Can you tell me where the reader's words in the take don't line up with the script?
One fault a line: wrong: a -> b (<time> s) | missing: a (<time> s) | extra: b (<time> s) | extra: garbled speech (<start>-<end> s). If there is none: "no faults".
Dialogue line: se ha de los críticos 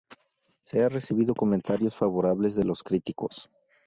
extra: recibido comentarios favorables (0.9 s)